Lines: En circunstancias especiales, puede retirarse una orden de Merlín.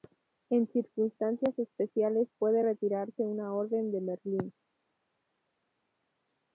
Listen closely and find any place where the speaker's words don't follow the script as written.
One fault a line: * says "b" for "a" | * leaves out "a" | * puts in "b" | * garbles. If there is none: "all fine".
all fine